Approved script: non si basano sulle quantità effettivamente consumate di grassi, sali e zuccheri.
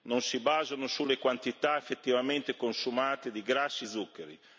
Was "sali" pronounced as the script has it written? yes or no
no